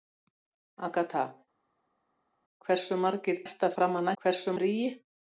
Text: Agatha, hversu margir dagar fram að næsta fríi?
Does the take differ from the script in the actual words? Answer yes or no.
yes